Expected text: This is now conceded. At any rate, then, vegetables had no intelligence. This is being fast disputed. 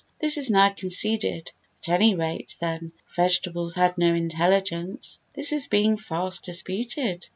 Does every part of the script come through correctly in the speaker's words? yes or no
yes